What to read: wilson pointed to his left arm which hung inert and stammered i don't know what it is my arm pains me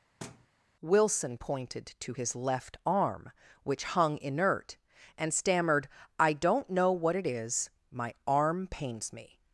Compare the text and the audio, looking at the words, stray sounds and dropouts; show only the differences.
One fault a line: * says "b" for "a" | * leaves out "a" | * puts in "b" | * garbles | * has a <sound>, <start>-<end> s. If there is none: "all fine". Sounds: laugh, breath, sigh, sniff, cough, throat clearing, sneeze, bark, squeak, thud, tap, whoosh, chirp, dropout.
* has a thud, 0.2-0.5 s